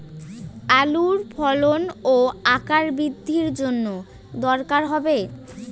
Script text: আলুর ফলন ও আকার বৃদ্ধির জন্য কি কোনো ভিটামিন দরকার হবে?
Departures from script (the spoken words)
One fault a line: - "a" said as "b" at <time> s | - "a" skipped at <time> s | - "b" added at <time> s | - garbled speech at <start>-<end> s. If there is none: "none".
- "কি কোনো ভিটামিন" skipped at 3.9 s